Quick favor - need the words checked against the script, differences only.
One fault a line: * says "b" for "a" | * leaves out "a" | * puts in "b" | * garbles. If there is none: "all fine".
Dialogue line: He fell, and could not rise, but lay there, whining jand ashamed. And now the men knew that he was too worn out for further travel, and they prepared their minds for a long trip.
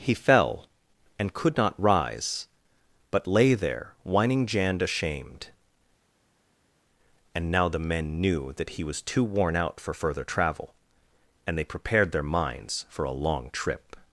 all fine